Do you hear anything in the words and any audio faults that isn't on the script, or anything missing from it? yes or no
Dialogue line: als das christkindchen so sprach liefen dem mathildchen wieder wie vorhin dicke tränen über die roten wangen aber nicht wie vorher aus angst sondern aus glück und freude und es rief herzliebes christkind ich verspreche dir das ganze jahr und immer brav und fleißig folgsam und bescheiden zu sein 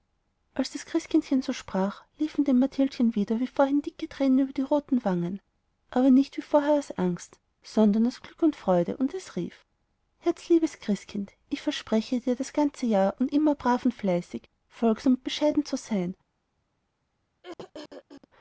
yes